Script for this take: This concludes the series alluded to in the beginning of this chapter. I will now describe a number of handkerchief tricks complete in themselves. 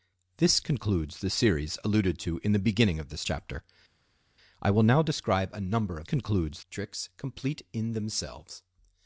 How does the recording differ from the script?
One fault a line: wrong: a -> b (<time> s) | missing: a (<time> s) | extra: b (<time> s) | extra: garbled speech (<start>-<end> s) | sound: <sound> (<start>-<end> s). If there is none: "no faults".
wrong: handkerchief -> concludes (6.0 s)